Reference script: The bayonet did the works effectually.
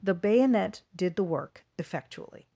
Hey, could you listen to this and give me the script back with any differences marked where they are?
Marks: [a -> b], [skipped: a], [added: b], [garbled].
The bayonet did the [works -> work] effectually.